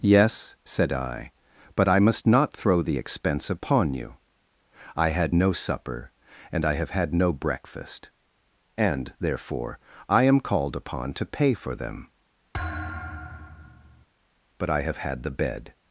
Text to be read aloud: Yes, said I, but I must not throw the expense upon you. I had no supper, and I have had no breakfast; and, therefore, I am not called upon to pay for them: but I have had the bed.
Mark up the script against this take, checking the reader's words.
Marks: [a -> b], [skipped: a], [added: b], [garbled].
Yes, said I, but I must not throw the expense upon you. I had no supper, and I have had no breakfast; and, therefore, I am [skipped: not] called upon to pay for them: but I have had the bed.